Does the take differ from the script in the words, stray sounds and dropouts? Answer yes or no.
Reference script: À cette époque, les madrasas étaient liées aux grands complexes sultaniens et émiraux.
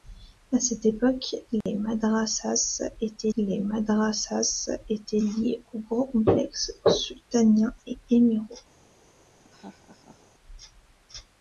yes